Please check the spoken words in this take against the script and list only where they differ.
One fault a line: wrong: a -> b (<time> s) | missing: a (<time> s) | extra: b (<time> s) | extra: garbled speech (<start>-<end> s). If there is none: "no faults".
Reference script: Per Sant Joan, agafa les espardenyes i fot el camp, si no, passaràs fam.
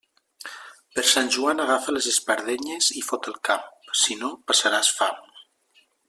no faults